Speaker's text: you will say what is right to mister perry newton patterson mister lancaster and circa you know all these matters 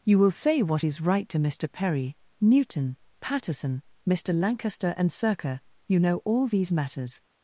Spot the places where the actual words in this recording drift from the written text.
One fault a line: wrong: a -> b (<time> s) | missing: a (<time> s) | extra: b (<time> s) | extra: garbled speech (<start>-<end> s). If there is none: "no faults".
no faults